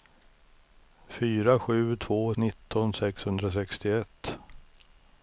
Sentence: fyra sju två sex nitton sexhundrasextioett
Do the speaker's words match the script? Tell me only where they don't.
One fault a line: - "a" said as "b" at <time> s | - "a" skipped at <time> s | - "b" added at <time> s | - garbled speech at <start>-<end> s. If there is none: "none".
- "sex" skipped at 2.4 s